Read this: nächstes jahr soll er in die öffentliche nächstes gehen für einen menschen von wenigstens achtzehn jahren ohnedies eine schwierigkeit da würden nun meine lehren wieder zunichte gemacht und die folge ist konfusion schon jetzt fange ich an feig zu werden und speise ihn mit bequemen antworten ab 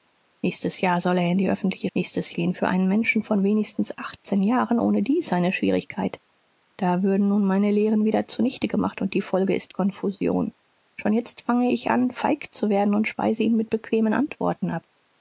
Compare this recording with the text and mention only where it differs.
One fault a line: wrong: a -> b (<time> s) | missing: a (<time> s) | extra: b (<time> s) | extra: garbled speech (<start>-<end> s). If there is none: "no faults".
no faults